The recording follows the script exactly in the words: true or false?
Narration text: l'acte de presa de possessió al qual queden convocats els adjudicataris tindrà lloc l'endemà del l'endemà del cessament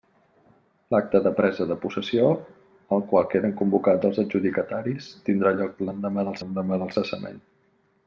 true